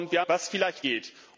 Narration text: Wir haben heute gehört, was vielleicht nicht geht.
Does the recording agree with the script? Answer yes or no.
no